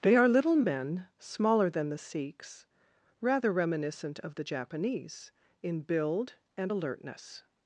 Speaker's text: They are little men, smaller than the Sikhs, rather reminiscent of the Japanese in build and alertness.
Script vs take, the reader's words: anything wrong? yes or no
no